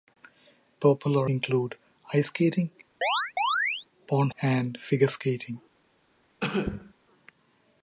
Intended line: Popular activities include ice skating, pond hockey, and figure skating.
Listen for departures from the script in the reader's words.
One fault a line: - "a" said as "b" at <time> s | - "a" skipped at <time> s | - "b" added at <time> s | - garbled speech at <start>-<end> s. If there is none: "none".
- "activities" skipped at 1.3 s
- "hockey" skipped at 4.3 s